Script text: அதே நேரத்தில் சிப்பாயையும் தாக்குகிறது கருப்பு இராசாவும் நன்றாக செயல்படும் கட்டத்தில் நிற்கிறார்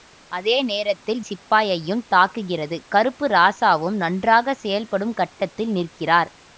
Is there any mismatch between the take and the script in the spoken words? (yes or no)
no